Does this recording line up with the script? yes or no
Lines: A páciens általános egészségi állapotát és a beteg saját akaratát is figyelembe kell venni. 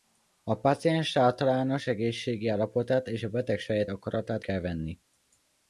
no